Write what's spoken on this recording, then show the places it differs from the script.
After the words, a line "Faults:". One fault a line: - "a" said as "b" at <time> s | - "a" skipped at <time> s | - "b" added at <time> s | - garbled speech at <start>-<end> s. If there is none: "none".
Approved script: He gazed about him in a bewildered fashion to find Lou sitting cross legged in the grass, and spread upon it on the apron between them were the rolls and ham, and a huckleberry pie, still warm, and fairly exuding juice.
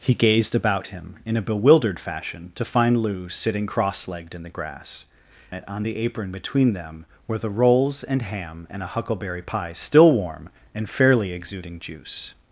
He gazed about him in a bewildered fashion to find Lou sitting cross legged in the grass, it on the apron between them were the rolls and ham, and a huckleberry pie, still warm, and fairly exuding juice.
Faults:
- "and spread upon" skipped at 5.0 s